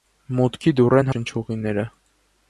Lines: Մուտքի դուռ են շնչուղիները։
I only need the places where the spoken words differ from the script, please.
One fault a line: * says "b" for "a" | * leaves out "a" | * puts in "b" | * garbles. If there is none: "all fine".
all fine